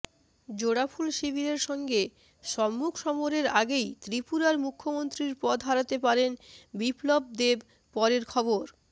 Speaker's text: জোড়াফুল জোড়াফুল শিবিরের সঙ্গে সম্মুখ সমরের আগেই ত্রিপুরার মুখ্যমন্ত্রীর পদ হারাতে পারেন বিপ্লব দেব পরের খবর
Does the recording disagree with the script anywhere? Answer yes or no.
yes